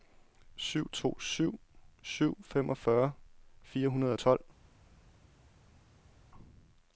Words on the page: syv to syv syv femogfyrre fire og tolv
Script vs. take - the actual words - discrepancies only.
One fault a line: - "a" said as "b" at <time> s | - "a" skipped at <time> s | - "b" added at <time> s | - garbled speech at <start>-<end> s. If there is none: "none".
- "hundrede" added at 3.9 s